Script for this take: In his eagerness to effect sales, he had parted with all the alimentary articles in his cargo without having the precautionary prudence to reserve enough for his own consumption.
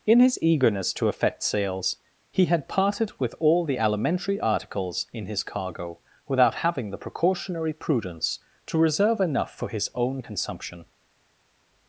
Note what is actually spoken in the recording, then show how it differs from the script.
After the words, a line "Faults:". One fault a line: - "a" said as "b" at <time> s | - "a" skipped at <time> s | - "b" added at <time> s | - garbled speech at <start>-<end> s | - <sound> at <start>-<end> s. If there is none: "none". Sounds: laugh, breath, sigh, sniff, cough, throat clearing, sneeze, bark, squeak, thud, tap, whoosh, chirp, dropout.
In his eagerness to effect sales, he had parted with all the alimentary articles in his cargo without having the precautionary prudence to reserve enough for his own consumption.
Faults:
none